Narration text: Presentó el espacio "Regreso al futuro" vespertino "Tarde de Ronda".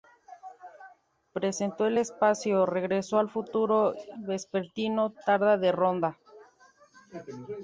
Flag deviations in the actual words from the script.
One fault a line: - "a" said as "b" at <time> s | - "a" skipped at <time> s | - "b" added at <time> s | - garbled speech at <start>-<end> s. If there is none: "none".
none